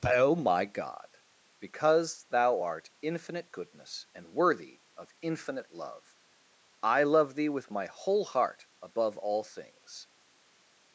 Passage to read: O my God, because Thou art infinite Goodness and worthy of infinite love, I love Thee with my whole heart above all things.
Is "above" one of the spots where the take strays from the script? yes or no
no